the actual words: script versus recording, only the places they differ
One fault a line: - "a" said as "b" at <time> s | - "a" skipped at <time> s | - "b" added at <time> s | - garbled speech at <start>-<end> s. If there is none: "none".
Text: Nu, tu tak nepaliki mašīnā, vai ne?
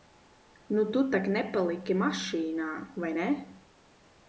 none